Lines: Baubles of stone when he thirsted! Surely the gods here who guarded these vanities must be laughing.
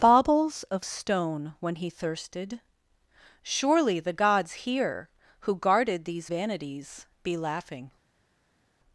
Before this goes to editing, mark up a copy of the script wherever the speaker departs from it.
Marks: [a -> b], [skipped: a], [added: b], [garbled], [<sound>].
Baubles of stone when he thirsted! Surely the gods here who guarded these vanities [skipped: must] be laughing.